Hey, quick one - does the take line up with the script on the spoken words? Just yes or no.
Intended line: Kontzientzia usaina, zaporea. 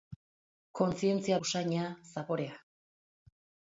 yes